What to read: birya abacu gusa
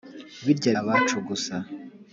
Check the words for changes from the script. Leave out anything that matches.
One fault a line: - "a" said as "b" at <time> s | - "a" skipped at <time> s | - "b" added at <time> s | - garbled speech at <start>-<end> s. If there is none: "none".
none